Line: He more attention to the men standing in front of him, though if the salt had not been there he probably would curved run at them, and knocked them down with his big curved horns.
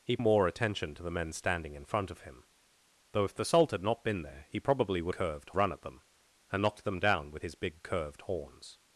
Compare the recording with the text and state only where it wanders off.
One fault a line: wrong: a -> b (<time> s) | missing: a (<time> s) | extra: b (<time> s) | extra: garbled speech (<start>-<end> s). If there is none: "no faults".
no faults